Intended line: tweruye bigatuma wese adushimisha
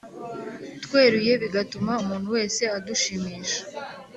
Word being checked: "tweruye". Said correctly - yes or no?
yes